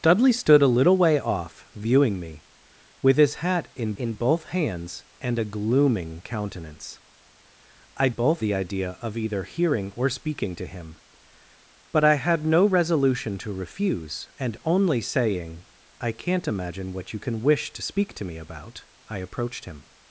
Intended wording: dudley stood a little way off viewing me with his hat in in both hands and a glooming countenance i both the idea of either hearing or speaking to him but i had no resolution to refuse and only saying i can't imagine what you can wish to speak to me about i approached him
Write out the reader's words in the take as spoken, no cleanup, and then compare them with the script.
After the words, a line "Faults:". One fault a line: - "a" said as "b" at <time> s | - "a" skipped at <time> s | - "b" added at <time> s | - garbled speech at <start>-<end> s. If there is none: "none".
dudley stood a little way off viewing me with his hat in in both hands and a glooming countenance i both the idea of either hearing or speaking to him but i had no resolution to refuse and only saying i can't imagine what you can wish to speak to me about i approached him
Faults:
none